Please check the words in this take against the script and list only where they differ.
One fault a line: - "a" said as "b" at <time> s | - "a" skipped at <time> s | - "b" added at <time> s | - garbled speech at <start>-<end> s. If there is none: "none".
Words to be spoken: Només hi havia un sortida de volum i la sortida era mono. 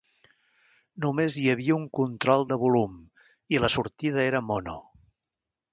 - "sortida" said as "control" at 2.0 s